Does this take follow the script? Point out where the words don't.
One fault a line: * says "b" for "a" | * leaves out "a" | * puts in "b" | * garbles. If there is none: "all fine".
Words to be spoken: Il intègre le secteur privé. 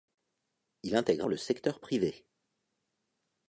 all fine